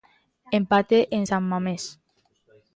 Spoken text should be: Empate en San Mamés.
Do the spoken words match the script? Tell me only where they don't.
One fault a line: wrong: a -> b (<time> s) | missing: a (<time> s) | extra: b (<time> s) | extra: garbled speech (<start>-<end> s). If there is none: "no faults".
no faults